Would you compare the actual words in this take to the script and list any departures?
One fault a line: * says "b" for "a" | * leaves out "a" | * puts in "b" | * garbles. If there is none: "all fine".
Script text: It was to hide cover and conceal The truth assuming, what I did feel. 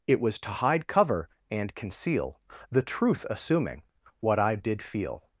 all fine